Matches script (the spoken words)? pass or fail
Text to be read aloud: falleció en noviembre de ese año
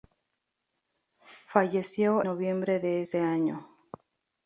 fail